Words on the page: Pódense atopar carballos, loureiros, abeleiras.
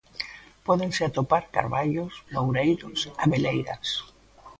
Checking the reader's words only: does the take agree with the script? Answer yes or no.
yes